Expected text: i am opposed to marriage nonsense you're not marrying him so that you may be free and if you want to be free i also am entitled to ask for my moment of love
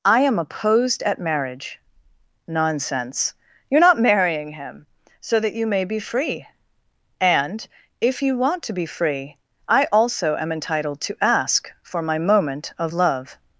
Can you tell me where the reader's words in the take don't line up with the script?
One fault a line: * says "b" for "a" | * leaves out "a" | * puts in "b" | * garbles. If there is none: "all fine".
* says "at" for "to"